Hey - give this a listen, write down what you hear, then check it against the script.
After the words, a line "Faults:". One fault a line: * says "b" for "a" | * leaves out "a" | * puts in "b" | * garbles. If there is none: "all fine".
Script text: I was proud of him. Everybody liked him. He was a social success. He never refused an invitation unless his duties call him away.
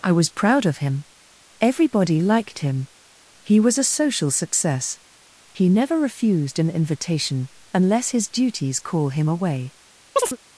I was proud of him. Everybody liked him. He was a social success. He never refused an invitation unless his duties call him away.
Faults:
all fine